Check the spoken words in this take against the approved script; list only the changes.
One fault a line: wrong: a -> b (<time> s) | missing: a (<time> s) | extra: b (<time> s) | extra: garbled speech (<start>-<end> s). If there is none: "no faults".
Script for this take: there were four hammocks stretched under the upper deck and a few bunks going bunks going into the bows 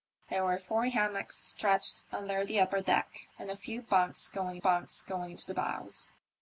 no faults